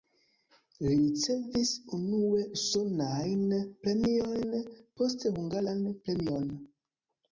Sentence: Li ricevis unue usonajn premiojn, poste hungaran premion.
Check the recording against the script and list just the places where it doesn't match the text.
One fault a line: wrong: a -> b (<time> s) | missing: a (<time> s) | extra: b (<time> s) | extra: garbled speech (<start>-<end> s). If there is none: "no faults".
no faults